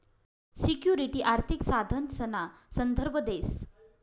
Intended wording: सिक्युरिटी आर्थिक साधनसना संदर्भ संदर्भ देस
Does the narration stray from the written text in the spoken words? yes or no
yes